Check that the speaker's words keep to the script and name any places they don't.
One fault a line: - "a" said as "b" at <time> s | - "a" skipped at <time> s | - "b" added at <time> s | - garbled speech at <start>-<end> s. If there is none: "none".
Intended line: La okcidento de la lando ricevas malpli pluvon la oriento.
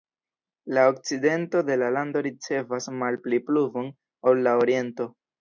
- "ol" added at 4.3 s